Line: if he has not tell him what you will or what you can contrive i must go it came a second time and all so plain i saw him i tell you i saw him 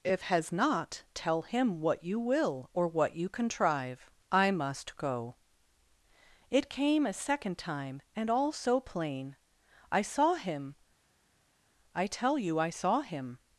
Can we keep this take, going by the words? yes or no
no